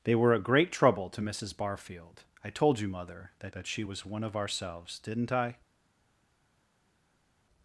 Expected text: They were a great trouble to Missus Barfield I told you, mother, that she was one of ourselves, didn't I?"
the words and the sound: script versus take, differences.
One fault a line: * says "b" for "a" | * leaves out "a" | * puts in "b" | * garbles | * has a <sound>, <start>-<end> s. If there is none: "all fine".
* puts in "that"